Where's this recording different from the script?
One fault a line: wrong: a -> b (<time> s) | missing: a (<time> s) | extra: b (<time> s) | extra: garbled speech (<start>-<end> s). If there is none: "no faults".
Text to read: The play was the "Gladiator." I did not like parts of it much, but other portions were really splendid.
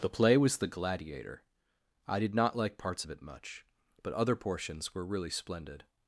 no faults